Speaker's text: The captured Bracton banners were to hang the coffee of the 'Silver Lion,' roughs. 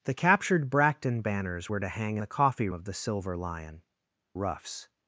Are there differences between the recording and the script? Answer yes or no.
no